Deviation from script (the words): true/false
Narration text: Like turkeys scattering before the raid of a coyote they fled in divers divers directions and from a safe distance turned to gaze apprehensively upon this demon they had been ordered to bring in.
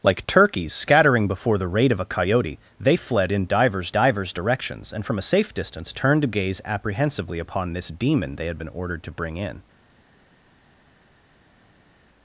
false